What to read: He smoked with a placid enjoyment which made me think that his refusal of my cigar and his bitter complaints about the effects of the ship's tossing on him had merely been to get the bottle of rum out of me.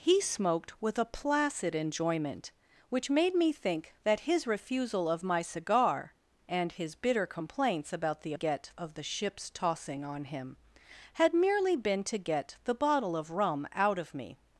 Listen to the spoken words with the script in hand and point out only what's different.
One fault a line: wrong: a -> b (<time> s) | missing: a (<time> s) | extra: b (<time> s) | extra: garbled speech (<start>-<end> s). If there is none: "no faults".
wrong: effects -> get (8.3 s)